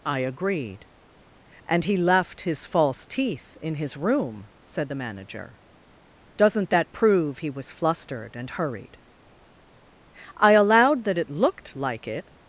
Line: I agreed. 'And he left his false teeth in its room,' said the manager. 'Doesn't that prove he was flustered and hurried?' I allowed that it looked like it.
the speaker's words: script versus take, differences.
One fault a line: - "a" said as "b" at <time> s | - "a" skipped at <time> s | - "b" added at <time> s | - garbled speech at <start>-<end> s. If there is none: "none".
- "its" said as "his" at 3.8 s